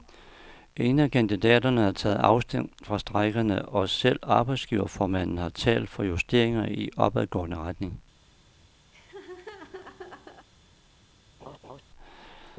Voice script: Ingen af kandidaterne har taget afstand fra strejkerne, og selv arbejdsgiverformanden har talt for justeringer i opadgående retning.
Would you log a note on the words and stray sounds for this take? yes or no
yes